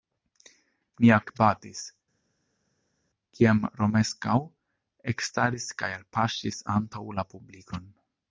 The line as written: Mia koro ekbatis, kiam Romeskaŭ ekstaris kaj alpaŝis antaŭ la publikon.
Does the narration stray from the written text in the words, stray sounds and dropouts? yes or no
yes